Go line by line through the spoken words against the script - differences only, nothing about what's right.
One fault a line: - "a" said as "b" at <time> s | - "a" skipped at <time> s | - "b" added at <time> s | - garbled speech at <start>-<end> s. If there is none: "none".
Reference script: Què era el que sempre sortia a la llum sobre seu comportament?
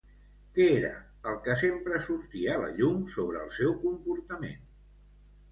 - "el" added at 3.5 s